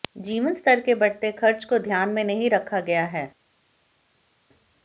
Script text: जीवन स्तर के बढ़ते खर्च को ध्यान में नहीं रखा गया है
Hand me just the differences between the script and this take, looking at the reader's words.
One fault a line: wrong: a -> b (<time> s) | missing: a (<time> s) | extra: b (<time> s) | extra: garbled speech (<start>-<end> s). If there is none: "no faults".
no faults